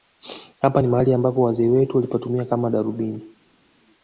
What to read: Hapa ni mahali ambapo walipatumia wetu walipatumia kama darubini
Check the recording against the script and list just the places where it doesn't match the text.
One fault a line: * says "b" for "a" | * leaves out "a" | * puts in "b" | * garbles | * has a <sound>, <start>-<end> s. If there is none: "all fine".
* says "wazee" for "walipatumia"